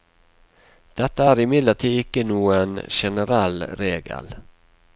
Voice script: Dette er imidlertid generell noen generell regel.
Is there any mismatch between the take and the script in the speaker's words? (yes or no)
yes